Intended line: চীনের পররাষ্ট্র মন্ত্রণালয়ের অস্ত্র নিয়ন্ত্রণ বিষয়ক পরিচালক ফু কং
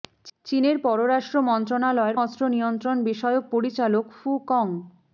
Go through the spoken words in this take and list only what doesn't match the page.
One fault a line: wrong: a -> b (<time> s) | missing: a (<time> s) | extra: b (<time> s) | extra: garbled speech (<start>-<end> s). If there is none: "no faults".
no faults